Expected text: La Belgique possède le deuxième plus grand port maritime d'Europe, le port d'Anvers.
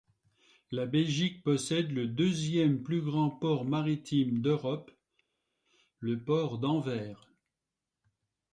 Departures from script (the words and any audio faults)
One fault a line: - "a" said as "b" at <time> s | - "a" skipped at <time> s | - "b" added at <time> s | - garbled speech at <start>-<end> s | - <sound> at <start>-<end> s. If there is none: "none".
none